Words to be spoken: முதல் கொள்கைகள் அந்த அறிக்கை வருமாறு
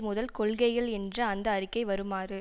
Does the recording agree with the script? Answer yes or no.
no